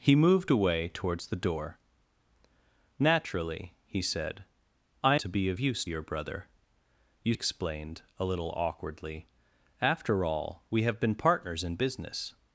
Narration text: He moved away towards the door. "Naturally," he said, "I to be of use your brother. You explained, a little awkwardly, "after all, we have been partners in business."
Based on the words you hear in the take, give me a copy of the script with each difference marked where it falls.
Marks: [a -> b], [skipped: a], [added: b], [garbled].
He moved away towards the door. "Naturally," he said, "I to be of use your brother. You explained, a little awkwardly, "after all, we have been partners in business."